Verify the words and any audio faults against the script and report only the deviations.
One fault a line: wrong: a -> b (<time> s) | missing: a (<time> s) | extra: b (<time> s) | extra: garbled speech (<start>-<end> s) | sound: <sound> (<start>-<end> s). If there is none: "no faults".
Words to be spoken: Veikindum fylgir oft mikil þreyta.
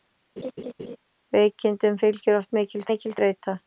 sound: laugh (0.4-1.0 s)
extra: mikil (2.9 s)